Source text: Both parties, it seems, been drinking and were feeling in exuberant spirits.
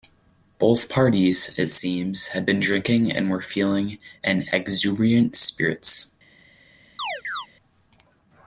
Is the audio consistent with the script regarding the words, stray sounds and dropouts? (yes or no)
no